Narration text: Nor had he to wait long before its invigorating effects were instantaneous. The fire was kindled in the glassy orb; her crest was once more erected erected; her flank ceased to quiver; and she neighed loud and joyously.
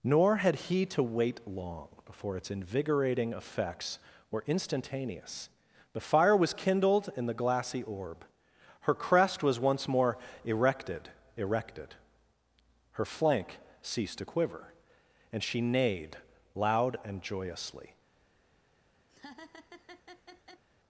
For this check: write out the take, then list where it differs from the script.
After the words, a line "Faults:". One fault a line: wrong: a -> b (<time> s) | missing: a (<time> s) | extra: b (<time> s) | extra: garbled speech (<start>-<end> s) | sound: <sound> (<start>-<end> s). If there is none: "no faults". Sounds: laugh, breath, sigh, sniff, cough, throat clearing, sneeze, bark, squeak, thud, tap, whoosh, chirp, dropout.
Nor had he to wait long before its invigorating effects were instantaneous. The fire was kindled in the glassy orb; her crest was once more erected erected; her flank ceased to quiver; and she neighed loud and joyously.
Faults:
sound: laugh (19.1-20.6 s)